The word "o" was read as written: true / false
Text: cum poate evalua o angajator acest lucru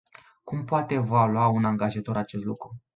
false